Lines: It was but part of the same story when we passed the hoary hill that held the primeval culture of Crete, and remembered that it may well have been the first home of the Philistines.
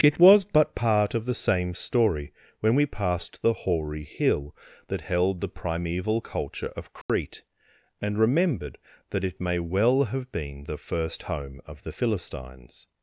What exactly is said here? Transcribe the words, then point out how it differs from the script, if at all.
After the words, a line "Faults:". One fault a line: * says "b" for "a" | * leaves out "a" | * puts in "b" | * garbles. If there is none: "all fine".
It was but part of the same story when we passed the hoary hill that held the primeval culture of Crete, and remembered that it may well have been the first home of the Philistines.
Faults:
all fine